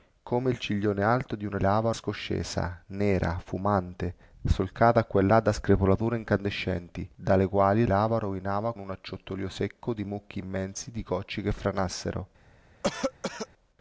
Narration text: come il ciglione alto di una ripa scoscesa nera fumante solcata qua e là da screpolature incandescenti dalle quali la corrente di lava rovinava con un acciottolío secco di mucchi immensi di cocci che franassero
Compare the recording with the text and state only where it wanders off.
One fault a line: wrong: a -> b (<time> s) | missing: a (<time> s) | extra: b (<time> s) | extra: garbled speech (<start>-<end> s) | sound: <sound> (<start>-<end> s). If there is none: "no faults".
wrong: ripa -> lava (1.6 s)
missing: la corrente di (7.8 s)
missing: con (8.7 s)
sound: cough (12.8-13.5 s)